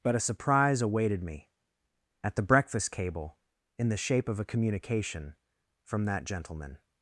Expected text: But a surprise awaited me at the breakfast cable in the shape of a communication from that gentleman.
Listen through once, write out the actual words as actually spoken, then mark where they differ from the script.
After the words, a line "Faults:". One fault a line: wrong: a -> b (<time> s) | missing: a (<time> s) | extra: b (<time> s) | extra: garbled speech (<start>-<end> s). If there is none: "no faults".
But a surprise awaited me at the breakfast cable in the shape of a communication from that gentleman.
Faults:
no faults